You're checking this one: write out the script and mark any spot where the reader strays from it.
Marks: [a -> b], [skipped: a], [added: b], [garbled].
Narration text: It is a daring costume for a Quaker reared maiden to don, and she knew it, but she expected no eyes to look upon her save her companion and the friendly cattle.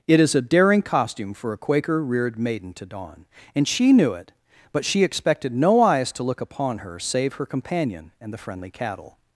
It is a daring costume for a Quaker reared maiden to don, and she knew it, but she expected no eyes to look upon her save her companion and the friendly cattle.